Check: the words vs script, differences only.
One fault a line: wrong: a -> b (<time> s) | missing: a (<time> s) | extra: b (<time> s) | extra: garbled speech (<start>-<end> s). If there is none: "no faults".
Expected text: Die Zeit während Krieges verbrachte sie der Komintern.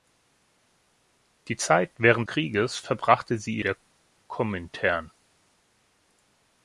no faults